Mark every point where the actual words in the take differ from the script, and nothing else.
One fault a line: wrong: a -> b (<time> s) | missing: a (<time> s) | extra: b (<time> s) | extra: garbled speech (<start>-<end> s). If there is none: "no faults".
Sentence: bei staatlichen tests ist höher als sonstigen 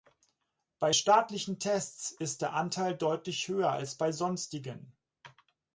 extra: der anteil deutlich (2.4 s)
extra: bei (4.0 s)